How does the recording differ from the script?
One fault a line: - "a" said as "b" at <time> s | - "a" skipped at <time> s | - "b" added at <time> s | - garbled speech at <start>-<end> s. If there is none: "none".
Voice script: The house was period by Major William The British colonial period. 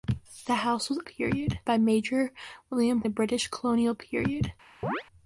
none